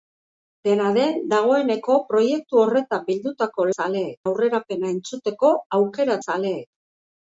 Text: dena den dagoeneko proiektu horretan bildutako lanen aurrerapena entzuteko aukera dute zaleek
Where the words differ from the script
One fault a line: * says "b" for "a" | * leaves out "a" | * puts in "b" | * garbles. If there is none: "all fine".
* says "zaleek" for "lanen"
* leaves out "dute"